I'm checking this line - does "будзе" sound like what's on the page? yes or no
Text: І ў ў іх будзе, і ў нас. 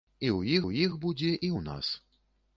yes